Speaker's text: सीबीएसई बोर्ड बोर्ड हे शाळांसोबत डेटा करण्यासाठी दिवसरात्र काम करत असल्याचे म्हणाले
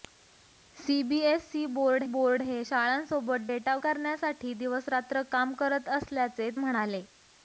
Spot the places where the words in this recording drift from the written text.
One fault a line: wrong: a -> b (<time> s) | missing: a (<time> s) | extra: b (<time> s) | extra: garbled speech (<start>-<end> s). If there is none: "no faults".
no faults